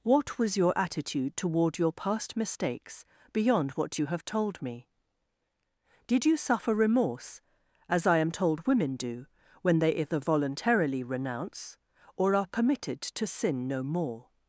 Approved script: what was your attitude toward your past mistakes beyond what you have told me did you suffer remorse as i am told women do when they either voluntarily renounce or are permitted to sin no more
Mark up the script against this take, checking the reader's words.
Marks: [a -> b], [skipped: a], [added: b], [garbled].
what was your attitude toward your past mistakes beyond what you have told me did you suffer remorse as i am told women do when they either voluntarily renounce or are permitted to sin no more